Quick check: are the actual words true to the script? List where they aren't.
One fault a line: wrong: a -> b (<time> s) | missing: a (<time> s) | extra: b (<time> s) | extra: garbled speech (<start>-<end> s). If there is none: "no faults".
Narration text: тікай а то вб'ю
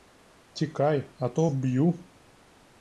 no faults